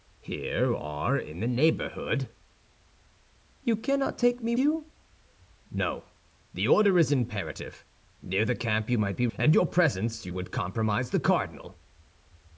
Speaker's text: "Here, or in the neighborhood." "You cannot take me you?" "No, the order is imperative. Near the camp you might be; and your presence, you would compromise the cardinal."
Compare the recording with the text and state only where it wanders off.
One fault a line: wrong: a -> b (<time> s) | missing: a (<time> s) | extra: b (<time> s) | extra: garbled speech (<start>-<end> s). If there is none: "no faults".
no faults